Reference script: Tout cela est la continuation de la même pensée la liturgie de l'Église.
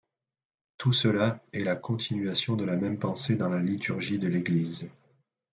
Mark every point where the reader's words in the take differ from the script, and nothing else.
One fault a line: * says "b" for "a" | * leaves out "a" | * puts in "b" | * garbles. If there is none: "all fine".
* puts in "dans"